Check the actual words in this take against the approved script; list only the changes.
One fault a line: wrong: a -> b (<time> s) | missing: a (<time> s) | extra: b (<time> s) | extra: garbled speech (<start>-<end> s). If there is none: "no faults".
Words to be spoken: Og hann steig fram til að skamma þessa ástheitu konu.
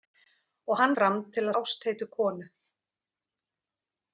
missing: steig (0.9 s)
missing: skamma þessa (1.6 s)